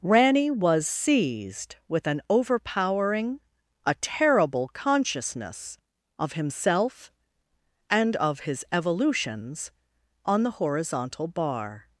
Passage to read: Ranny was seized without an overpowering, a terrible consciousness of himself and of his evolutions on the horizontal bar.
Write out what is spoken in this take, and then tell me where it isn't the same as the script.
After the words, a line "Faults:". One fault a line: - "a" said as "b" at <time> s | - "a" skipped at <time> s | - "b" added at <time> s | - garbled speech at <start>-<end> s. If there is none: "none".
Ranny was seized with an overpowering, a terrible consciousness of himself and of his evolutions on the horizontal bar.
Faults:
- "without" said as "with" at 1.9 s